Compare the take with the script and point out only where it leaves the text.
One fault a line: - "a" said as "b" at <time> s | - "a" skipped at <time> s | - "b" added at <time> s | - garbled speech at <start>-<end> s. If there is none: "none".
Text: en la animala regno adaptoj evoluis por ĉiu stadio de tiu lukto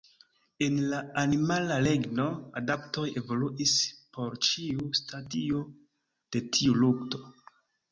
none